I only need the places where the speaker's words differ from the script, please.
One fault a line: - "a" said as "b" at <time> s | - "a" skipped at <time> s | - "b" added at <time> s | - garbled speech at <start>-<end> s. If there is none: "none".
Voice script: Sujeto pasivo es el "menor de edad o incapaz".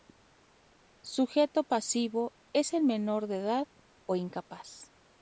none